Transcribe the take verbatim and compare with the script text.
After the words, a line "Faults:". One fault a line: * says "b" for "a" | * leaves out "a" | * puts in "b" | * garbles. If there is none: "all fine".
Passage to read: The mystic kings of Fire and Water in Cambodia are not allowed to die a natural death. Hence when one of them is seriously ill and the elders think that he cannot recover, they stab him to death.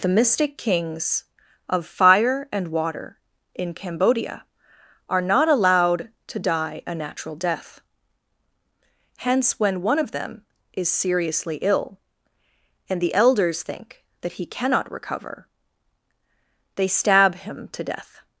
The mystic kings of Fire and Water in Cambodia are not allowed to die a natural death. Hence when one of them is seriously ill and the elders think that he cannot recover, they stab him to death.
Faults:
all fine